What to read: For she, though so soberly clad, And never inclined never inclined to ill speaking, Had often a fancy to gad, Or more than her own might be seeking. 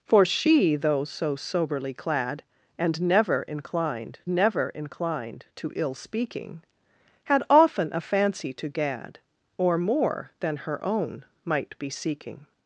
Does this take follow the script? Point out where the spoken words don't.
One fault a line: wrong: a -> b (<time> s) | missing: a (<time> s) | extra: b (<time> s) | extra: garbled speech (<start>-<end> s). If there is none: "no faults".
no faults